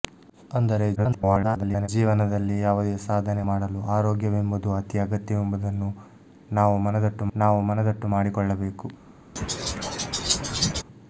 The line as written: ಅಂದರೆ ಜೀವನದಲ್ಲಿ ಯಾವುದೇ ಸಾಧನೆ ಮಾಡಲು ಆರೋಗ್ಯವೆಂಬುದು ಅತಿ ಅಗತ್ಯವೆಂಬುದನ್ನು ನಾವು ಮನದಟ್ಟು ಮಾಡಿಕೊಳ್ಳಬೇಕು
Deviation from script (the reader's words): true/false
true